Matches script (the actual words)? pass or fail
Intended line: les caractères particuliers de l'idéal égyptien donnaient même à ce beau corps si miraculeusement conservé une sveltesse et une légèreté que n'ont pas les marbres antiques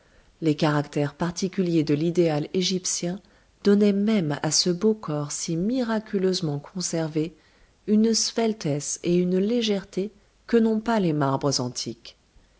pass